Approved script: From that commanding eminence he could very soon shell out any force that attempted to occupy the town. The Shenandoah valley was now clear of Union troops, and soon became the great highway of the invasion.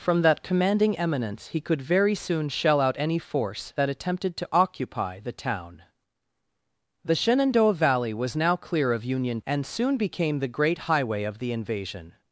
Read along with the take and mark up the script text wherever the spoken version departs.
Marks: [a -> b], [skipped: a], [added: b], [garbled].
From that commanding eminence he could very soon shell out any force that attempted to occupy the town. The Shenandoah valley was now clear of Union [skipped: troops,] and soon became the great highway of the invasion.